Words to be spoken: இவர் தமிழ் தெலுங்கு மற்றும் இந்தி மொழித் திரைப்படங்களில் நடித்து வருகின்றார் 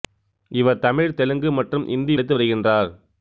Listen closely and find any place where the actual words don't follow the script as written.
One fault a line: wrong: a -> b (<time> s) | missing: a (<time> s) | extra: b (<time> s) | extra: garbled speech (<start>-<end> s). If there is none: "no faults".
missing: மொழித் திரைப்படங்களில் (2.2 s)